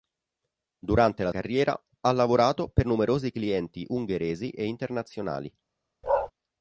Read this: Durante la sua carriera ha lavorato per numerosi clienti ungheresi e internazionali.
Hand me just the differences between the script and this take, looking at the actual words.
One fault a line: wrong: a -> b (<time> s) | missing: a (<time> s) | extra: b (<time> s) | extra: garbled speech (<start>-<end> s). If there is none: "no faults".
missing: sua (1.3 s)